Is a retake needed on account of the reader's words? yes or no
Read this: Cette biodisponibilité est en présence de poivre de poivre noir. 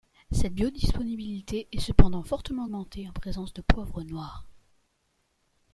yes